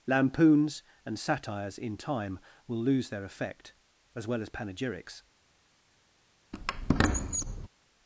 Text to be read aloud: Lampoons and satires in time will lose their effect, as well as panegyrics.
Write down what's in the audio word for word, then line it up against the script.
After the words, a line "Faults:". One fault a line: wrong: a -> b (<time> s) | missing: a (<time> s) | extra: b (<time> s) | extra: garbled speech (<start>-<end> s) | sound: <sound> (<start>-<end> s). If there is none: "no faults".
Lampoons and satires in time will lose their effect, as well as panegyrics.
Faults:
sound: squeak (6.5-7.7 s)